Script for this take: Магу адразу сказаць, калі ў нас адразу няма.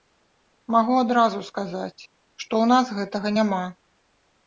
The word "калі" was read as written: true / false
false